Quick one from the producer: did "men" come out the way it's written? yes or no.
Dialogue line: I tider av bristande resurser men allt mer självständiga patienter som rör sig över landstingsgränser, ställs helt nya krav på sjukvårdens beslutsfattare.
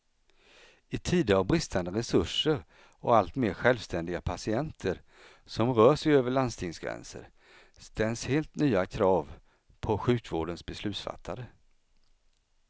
no